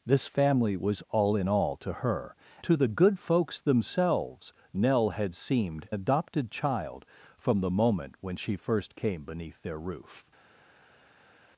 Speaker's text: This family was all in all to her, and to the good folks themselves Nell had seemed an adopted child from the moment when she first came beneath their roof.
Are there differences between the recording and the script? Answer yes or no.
yes